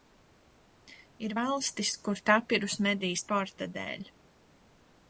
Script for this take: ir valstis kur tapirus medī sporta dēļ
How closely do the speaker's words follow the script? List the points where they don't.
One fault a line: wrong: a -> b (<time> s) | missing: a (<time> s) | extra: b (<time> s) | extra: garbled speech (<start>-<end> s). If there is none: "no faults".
no faults